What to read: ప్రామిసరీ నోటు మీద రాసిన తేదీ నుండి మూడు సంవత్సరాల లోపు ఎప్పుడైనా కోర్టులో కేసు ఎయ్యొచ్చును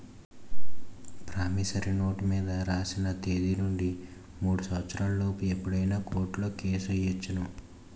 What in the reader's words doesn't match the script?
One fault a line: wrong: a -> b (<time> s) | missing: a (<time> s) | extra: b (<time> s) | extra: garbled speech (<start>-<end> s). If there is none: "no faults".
no faults